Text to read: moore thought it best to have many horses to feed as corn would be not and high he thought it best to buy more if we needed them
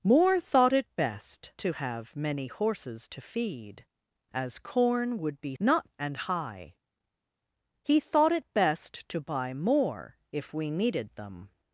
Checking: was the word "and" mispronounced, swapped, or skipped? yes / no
no